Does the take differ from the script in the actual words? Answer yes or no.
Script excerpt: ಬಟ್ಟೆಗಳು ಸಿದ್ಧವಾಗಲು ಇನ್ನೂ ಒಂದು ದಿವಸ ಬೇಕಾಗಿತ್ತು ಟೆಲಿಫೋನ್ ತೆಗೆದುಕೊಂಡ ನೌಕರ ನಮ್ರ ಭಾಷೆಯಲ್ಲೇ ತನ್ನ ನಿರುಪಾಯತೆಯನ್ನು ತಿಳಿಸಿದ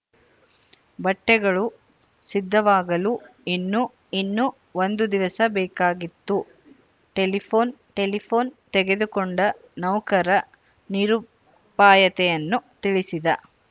yes